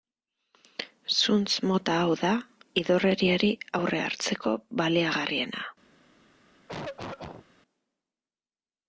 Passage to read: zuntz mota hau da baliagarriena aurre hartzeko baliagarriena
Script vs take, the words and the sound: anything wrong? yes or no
yes